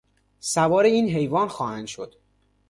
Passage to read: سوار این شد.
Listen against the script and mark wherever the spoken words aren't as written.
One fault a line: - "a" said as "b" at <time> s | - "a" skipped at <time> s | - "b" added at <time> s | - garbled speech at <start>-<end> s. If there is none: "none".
- "حیوان خواهند" added at 1.1 s